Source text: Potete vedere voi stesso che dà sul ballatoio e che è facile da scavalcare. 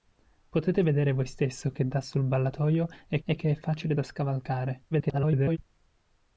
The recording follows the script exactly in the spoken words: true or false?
false